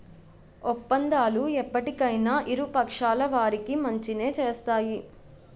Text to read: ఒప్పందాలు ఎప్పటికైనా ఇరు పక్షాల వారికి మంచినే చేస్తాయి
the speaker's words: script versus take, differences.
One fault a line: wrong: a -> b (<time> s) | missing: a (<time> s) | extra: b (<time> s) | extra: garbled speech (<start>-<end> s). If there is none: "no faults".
no faults